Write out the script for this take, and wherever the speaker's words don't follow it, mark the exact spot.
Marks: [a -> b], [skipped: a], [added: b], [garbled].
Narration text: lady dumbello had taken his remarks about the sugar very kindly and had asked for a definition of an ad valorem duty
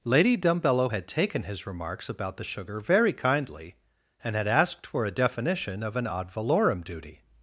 lady dumbello had taken his remarks about the sugar very kindly and had asked for a definition of an ad valorem duty